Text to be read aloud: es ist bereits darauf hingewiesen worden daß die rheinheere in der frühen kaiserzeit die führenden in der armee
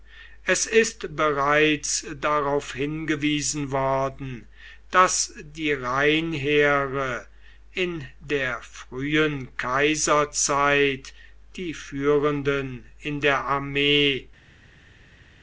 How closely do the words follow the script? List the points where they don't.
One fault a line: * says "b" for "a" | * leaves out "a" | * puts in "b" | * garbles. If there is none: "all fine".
all fine